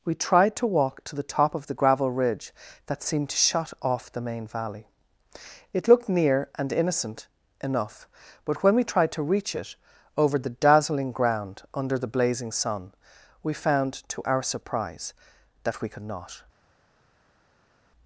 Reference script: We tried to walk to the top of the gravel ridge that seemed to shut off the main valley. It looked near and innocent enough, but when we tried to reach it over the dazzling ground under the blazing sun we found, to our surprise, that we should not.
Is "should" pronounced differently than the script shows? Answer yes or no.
yes